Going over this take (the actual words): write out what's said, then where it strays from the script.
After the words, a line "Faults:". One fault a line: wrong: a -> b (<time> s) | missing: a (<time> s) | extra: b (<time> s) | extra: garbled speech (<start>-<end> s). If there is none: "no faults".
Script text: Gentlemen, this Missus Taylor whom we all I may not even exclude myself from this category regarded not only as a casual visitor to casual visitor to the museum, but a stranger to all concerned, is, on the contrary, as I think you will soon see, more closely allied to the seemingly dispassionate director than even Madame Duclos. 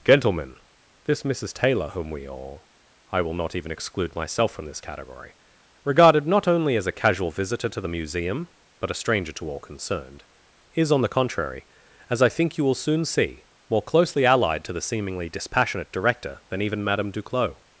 Gentlemen, this Missus Taylor whom we all I will not even exclude myself from this category regarded not only as a casual visitor to the museum, but a stranger to all concerned, is, on the contrary, as I think you will soon see, more closely allied to the seemingly dispassionate director than even Madame Duclos.
Faults:
wrong: may -> will (3.2 s)
missing: casual visitor to (7.8 s)